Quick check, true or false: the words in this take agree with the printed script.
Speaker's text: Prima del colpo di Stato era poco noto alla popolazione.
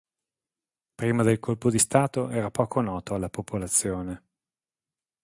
true